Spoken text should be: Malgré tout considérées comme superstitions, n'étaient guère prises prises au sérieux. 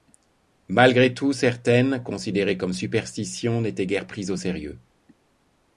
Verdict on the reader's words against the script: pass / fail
fail